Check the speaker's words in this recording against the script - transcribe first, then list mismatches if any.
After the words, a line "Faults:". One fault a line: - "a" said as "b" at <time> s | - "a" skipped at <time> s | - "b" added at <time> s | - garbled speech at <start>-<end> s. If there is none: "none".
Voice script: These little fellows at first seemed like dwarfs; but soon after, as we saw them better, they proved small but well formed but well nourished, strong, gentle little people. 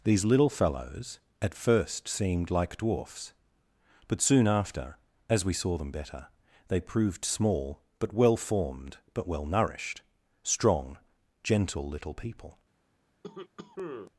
These little fellows at first seemed like dwarfs; but soon after, as we saw them better, they proved small but well formed but well nourished, strong, gentle little people.
Faults:
none